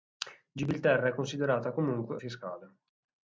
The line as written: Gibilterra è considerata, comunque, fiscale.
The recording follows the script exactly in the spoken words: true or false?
true